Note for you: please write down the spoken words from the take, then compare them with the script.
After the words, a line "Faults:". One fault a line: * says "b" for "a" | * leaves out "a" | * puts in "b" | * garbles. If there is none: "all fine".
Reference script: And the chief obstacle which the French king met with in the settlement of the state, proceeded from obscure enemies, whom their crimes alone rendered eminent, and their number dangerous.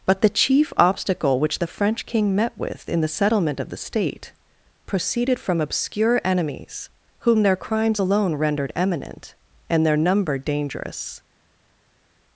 But the chief obstacle which the French king met with in the settlement of the state, proceeded from obscure enemies, whom their crimes alone rendered eminent, and their number dangerous.
Faults:
* says "But" for "And"